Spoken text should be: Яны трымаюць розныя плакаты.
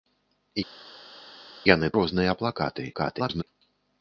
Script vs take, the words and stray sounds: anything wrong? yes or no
yes